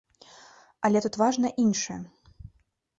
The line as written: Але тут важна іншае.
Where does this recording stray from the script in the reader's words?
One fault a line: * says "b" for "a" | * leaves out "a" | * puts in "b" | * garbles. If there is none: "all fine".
all fine